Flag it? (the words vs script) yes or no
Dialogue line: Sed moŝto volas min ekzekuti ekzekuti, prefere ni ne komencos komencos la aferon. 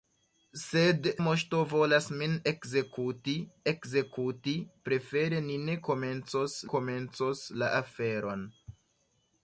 no